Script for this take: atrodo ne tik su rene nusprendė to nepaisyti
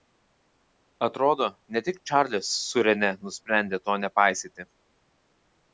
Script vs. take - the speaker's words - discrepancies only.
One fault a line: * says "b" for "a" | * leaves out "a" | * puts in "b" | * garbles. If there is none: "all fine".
* puts in "čarlis"